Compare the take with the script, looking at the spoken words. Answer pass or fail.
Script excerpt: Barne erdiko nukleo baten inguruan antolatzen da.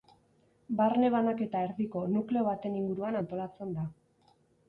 fail